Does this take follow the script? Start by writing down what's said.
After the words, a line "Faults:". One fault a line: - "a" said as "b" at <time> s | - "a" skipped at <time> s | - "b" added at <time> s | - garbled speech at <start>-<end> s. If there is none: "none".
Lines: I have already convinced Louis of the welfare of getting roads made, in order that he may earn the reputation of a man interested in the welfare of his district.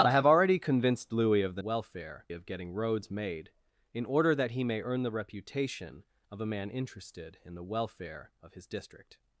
I have already convinced Louis of the welfare of getting roads made, in order that he may earn the reputation of a man interested in the welfare of his district.
Faults:
none